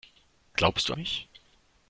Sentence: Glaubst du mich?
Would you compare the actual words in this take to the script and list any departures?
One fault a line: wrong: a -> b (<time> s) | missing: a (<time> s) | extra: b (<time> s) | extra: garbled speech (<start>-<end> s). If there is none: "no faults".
no faults